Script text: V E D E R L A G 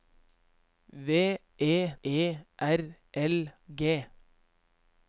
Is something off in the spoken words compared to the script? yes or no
yes